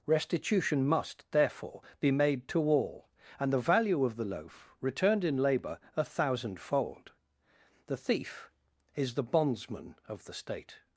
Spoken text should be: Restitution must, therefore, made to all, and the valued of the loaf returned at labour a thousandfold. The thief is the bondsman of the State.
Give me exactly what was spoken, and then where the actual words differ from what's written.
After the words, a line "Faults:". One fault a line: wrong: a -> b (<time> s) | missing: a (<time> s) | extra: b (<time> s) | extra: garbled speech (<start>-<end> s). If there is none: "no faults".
Restitution must, therefore, be made to all, and the value of the loaf returned in labour a thousandfold. The thief is the bondsman of the State.
Faults:
extra: be (2.0 s)
wrong: valued -> value (3.6 s)
wrong: at -> in (5.2 s)